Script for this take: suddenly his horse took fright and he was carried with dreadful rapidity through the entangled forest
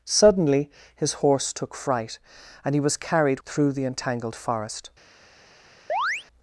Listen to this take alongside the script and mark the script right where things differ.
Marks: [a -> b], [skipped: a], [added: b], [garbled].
suddenly his horse took fright and he was carried [skipped: with dreadful rapidity] through the entangled forest